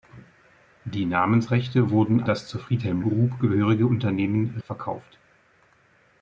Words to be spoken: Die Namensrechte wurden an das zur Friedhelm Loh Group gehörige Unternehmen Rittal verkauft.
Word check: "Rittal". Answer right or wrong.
wrong